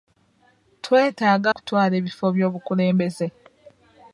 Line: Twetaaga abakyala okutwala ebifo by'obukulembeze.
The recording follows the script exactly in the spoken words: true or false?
false